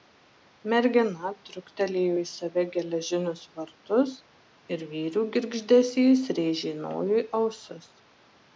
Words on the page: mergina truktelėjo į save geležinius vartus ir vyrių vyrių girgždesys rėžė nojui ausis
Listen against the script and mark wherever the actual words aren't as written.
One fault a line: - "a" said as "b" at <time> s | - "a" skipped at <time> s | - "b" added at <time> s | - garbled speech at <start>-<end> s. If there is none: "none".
- "vyrių" skipped at 5.3 s